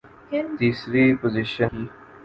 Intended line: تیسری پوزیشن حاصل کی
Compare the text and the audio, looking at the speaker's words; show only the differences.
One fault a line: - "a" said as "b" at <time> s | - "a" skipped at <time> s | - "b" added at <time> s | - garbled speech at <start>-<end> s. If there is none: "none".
- "حاصل" skipped at 1.7 s